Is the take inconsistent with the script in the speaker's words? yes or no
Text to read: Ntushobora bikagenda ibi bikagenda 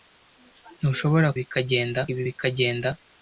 no